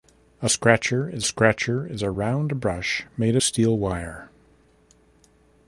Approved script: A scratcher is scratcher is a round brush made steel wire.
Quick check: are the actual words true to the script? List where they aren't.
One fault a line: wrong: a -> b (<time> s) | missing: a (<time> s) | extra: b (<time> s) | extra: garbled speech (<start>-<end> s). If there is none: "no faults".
no faults